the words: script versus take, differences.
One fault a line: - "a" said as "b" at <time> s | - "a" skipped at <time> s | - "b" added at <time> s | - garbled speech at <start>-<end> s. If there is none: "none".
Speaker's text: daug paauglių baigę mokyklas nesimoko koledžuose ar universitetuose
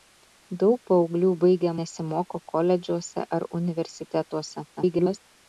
- "mokyklas" skipped at 1.7 s
- garbled speech at 4.8-5.2 s